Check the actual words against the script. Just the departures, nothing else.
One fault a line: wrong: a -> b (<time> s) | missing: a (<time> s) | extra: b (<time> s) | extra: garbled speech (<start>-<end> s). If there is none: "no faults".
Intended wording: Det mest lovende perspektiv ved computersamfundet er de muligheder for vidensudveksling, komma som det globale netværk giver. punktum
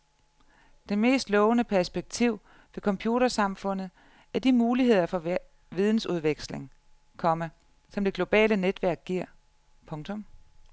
no faults